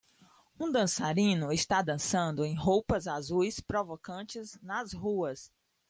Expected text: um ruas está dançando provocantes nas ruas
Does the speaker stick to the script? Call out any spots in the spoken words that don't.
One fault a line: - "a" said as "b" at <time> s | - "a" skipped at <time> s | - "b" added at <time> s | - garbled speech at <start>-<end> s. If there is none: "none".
- "ruas" said as "dançarino" at 0.7 s
- "em roupas azuis" added at 2.4 s